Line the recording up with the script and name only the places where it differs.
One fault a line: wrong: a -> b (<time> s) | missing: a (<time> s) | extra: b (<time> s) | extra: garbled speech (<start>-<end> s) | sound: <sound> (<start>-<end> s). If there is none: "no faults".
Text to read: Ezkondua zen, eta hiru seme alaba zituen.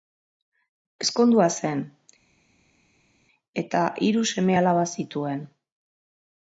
no faults